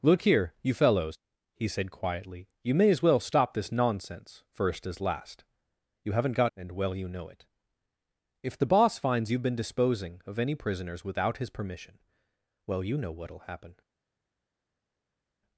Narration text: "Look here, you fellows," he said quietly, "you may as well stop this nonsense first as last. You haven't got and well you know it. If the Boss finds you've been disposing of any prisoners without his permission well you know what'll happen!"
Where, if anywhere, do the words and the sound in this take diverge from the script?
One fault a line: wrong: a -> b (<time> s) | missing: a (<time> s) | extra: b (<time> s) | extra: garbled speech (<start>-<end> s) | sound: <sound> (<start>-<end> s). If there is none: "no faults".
no faults